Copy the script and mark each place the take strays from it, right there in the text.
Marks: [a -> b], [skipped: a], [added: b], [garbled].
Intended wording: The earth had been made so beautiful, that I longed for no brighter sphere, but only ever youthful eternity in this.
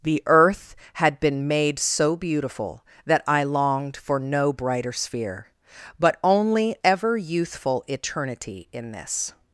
The earth had been made so beautiful, that I longed for no brighter sphere, but only ever youthful eternity in this.